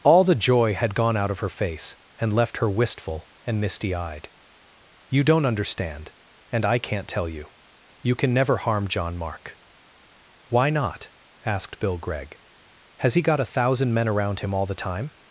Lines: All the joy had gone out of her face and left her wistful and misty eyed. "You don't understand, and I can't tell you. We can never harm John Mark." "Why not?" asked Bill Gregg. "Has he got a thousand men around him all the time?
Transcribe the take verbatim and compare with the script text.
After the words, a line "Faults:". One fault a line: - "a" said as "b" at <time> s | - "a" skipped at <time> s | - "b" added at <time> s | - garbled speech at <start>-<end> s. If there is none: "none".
All the joy had gone out of her face and left her wistful and misty eyed. "You don't understand, and I can't tell you. You can never harm John Mark." "Why not?" asked Bill Gregg. "Has he got a thousand men around him all the time?
Faults:
- "We" said as "You" at 8.0 s